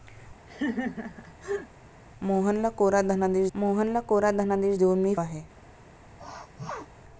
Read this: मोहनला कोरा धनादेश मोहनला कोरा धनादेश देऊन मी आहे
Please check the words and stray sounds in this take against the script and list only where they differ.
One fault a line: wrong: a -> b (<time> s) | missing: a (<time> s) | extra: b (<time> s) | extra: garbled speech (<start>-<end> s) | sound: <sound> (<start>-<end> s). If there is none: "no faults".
sound: laugh (0.5-1.7 s)
sound: sneeze (6.2-6.9 s)